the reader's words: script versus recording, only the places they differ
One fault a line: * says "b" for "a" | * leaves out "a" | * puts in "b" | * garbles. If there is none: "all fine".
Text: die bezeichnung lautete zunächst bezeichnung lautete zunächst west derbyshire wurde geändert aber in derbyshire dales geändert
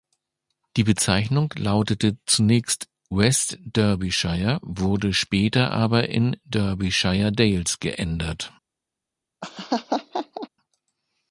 * leaves out "bezeichnung lautete zunächst"
* says "später" for "geändert"